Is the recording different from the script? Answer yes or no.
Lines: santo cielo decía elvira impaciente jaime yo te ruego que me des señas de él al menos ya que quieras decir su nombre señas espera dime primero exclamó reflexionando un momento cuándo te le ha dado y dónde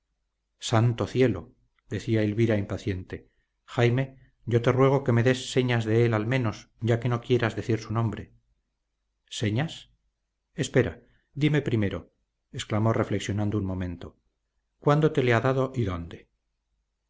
yes